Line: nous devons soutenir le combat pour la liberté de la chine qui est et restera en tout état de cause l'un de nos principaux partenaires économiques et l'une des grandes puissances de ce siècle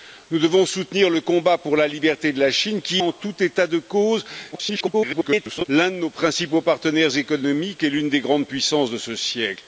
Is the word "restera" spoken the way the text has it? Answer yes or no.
no